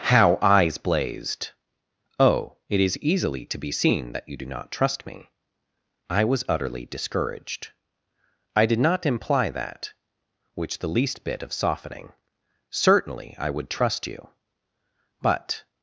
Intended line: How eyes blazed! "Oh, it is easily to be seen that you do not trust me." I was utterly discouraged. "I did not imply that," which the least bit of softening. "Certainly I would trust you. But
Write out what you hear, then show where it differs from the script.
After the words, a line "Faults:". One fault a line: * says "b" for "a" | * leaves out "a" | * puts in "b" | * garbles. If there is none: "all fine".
How eyes blazed! "Oh, it is easily to be seen that you do not trust me." I was utterly discouraged. "I did not imply that," which the least bit of softening. "Certainly I would trust you. But
Faults:
all fine